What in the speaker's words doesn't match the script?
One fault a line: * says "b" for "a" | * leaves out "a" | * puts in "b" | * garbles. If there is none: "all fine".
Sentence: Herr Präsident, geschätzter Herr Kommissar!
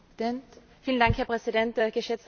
all fine